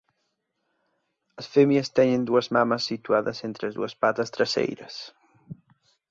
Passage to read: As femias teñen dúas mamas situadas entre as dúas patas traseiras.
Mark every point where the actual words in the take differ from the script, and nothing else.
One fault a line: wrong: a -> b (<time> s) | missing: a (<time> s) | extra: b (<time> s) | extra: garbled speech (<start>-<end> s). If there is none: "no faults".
no faults